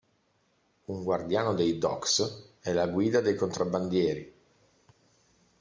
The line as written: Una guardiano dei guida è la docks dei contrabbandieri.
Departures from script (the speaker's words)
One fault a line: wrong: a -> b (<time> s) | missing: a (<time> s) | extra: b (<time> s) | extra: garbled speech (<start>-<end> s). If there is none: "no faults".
wrong: Una -> Un (0.8 s)
wrong: guida -> docks (1.8 s)
wrong: docks -> guida (2.9 s)